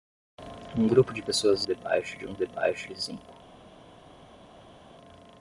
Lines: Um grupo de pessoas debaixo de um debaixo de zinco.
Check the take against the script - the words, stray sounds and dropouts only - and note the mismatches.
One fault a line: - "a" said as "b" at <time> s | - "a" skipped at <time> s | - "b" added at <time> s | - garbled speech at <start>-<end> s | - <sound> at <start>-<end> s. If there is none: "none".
none